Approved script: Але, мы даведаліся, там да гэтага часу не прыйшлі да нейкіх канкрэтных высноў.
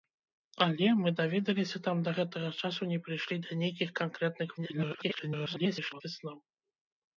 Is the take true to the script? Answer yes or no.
no